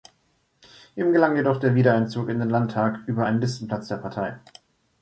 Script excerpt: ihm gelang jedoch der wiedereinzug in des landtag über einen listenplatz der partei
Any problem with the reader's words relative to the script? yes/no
yes